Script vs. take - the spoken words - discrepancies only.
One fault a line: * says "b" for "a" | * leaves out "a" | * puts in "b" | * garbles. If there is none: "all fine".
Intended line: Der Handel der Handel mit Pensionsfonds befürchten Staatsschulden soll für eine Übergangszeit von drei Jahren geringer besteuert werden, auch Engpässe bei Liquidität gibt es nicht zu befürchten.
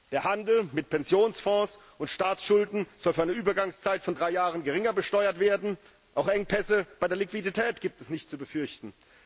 * leaves out "der Handel"
* says "und" for "befürchten"
* puts in "der"